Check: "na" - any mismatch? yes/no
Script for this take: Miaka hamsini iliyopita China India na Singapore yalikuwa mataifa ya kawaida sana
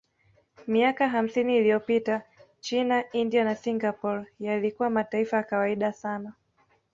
no